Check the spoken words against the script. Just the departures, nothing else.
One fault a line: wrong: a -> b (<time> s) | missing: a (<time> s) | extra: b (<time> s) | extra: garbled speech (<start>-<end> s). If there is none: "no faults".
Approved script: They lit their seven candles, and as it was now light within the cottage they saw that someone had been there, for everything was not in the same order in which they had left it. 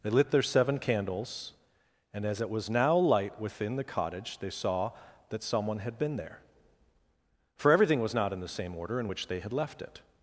no faults